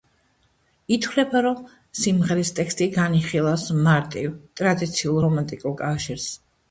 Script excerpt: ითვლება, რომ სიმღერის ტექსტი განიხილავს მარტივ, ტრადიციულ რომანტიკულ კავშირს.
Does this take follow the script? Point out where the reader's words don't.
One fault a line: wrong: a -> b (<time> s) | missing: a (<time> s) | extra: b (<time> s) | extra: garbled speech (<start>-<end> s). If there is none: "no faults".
no faults